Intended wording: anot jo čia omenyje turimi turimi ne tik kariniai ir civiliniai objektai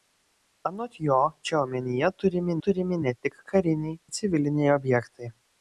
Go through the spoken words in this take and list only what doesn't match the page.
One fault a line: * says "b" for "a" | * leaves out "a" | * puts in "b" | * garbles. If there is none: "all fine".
all fine